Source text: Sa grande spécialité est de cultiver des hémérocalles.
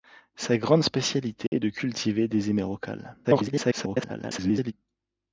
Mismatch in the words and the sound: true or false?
true